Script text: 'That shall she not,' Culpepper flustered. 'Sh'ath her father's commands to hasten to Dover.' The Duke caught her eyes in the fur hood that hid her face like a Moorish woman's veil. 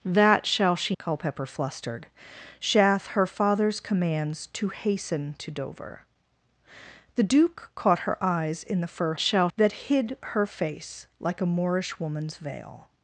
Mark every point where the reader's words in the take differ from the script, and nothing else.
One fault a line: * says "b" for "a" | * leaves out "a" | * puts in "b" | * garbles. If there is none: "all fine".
* leaves out "not"
* says "shall" for "hood"